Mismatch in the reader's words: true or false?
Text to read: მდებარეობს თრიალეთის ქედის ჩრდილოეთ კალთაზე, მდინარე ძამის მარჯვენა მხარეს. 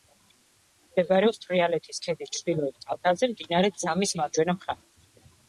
false